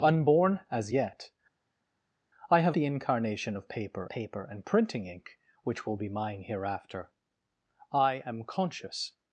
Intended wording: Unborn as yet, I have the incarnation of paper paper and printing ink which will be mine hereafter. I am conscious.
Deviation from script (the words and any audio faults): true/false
false